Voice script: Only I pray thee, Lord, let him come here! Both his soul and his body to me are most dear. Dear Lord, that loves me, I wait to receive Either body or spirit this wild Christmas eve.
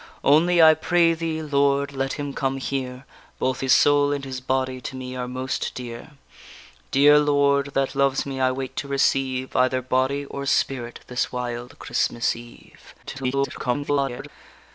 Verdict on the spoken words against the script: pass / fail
fail